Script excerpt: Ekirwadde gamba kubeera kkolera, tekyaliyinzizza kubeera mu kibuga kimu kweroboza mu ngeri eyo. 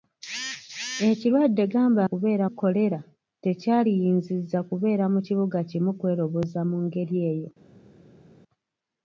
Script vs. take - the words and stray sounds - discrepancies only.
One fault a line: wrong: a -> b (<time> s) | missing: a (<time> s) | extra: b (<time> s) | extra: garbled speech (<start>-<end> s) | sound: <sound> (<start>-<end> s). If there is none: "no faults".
no faults